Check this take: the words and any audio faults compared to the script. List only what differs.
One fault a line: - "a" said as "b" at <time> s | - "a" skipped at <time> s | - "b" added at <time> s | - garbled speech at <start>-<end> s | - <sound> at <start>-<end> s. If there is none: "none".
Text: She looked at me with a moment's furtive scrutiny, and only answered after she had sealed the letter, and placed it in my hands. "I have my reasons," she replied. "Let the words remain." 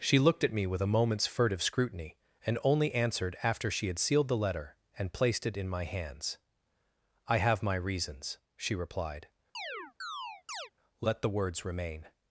- chirp at 9.5-10.7 s